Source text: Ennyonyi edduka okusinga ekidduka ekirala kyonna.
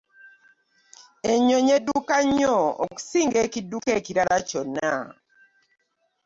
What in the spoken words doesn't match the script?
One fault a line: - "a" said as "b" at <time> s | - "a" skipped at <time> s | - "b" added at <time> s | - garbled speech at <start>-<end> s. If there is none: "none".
- "nnyo" added at 2.2 s